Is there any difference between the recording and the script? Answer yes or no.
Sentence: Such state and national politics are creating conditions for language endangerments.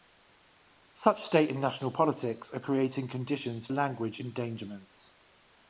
yes